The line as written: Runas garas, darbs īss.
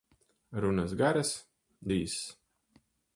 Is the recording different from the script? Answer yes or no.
yes